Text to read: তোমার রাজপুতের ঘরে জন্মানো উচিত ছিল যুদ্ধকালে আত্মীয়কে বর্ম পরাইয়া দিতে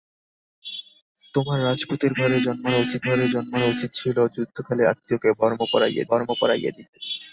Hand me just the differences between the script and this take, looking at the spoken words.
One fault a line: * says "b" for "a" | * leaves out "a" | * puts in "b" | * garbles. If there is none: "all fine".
* puts in "ঘরে জন্মানো উচিত"
* puts in "বর্ম পরাইয়া"